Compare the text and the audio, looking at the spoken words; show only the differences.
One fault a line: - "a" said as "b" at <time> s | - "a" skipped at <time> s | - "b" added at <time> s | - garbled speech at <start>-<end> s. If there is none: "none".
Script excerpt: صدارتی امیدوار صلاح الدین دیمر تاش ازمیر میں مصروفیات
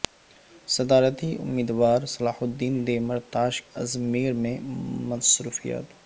none